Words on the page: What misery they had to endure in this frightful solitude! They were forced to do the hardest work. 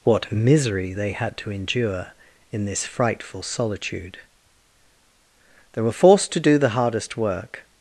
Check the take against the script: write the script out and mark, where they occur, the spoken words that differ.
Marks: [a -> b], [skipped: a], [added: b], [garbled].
What misery they had to endure in this frightful solitude! They were forced to do the hardest work.